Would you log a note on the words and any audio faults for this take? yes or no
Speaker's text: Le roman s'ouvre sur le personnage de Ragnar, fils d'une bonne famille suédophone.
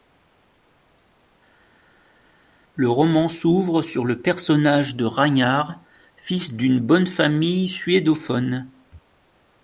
no